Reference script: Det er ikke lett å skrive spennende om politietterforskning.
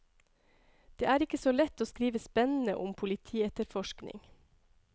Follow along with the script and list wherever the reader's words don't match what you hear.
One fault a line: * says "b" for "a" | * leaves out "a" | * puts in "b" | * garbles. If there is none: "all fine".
* puts in "så"